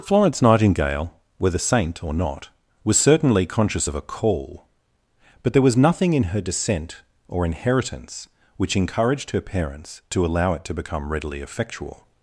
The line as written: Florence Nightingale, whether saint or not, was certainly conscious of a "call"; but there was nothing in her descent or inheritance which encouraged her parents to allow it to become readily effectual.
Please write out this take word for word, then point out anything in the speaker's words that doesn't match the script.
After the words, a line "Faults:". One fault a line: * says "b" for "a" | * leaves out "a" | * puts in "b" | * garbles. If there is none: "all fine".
Florence Nightingale, whether saint or not, was certainly conscious of a "call"; but there was nothing in her descent or inheritance which encouraged her parents to allow it to become readily effectual.
Faults:
all fine